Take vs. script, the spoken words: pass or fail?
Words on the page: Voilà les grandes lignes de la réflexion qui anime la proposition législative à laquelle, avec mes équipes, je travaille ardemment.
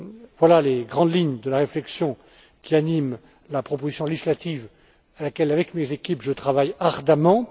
pass